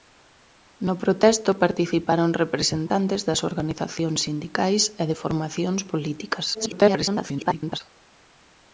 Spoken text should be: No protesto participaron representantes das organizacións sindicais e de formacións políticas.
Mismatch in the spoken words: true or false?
true